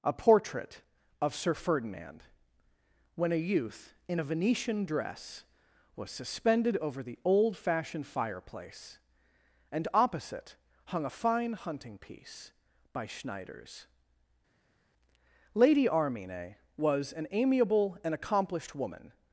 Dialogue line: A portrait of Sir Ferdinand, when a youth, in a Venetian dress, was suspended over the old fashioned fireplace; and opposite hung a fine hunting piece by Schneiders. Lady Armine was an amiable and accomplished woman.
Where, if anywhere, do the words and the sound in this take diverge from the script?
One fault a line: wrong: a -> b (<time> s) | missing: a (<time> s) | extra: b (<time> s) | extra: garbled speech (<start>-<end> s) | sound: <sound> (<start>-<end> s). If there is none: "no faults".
no faults